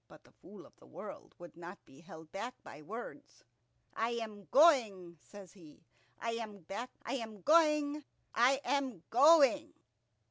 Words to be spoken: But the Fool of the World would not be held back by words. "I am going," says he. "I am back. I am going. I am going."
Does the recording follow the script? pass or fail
pass